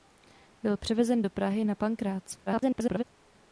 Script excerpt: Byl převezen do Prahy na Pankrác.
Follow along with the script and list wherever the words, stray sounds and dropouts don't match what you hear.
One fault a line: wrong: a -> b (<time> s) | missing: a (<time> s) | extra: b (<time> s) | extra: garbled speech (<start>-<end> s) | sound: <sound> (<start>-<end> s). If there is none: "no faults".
extra: garbled speech (2.5-3.0 s)